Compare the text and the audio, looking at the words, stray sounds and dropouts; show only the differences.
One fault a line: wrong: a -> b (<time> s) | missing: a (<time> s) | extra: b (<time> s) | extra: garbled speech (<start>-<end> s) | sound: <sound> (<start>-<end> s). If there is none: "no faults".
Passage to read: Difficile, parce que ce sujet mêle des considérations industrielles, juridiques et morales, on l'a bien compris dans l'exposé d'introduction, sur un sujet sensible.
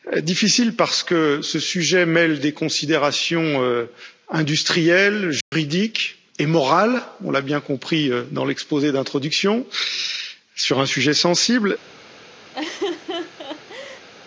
sound: dropout (5.4-5.5 s)
sound: laugh (12.5-14.1 s)